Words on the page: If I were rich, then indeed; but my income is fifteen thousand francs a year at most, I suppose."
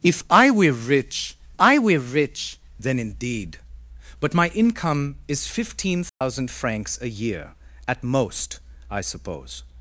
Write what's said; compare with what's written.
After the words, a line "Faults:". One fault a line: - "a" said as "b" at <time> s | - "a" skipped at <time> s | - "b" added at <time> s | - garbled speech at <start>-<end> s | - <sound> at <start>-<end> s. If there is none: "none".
If I were rich I were rich, then indeed; but my income is fifteen thousand francs a year at most, I suppose."
Faults:
- "I were rich" added at 1.6 s
- dropout at 6.1-6.2 s